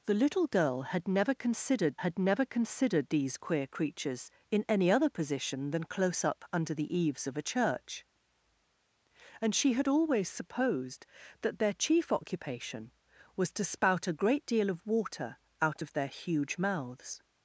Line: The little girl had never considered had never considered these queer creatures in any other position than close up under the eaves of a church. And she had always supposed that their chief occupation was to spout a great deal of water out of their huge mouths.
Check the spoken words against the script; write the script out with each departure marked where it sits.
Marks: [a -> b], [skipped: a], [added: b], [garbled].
The little girl had never considered had never considered these queer creatures in any other position than close up under the eaves of a church. And she had always supposed that their chief occupation was to spout a great deal of water out of their huge mouths.